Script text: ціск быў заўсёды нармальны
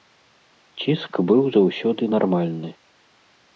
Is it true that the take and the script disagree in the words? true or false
false